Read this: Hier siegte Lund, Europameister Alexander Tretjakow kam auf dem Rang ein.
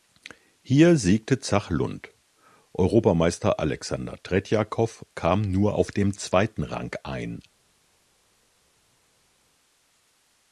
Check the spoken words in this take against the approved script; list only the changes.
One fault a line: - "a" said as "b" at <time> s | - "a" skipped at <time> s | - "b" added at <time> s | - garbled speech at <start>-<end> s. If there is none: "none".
- "Zach" added at 1.4 s
- "nur" added at 5.4 s
- "zweiten" added at 6.2 s